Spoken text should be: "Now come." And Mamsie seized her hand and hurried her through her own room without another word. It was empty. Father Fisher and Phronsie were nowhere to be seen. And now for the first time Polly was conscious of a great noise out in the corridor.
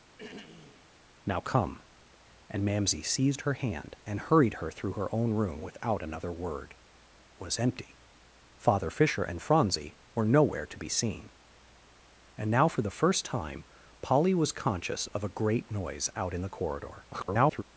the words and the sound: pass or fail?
fail